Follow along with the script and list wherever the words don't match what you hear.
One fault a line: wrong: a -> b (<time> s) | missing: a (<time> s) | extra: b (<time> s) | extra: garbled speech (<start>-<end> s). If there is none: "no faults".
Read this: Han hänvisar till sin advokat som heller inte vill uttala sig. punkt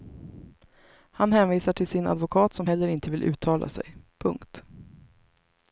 no faults